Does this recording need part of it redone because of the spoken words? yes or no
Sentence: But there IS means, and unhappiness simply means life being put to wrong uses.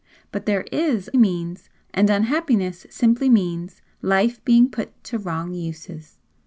no